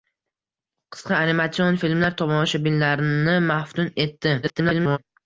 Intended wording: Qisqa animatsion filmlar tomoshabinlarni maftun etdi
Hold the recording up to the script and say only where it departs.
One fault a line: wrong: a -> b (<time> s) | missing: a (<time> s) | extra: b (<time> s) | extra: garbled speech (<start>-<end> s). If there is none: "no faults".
extra: garbled speech (4.4-5.0 s)